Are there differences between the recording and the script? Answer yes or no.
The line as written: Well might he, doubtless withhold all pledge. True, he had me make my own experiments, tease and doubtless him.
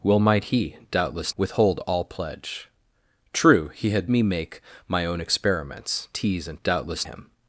no